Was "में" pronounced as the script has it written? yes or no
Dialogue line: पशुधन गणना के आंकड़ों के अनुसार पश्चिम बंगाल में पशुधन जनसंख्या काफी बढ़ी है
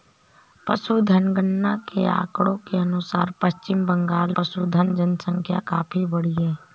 no